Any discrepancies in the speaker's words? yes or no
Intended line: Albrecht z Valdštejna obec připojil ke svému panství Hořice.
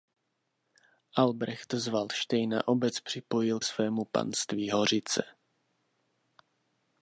yes